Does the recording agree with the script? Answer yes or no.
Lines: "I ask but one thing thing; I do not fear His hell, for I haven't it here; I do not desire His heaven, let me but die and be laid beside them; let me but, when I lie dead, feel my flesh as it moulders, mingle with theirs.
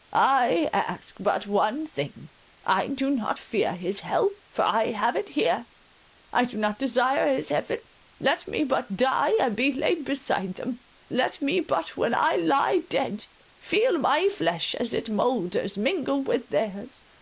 no